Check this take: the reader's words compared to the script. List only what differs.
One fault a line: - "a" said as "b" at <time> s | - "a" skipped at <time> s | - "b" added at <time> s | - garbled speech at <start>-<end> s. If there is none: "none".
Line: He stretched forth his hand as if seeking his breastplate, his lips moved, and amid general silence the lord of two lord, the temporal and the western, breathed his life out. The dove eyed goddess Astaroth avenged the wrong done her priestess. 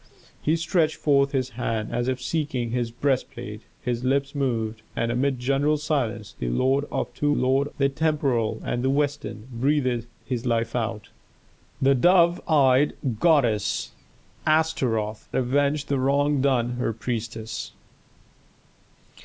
none